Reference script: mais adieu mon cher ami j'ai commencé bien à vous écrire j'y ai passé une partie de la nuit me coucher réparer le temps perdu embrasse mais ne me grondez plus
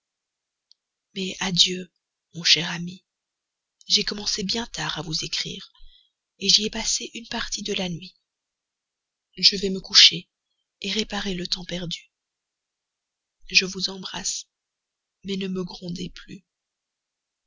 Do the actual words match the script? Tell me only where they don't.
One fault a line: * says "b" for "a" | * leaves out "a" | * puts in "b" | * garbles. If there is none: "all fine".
* puts in "tard"
* puts in "je vais"
* puts in "je vous"